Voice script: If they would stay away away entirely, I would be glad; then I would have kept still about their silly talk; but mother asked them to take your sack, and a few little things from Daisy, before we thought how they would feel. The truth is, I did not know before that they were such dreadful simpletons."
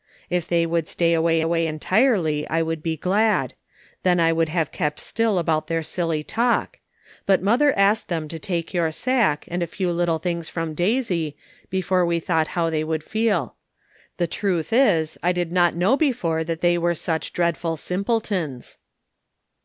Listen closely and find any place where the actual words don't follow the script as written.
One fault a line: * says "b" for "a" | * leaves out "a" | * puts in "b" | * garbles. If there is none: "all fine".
all fine